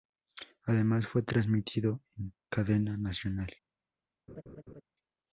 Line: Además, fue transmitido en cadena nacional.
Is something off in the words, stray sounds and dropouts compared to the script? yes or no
yes